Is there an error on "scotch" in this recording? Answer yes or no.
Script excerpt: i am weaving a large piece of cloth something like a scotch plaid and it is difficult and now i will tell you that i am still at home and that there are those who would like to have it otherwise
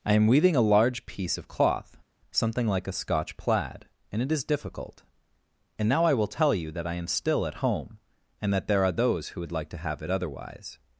no